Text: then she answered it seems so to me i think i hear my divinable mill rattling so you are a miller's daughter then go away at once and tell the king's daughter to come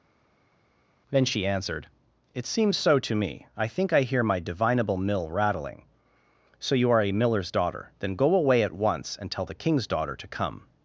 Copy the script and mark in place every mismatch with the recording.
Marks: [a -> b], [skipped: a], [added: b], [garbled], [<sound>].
then she answered it seems so to me i think i hear my divinable mill rattling so you are a miller's daughter then go away at once and tell the king's daughter to come